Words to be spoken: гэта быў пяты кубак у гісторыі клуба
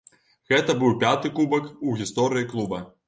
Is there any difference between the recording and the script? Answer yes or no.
no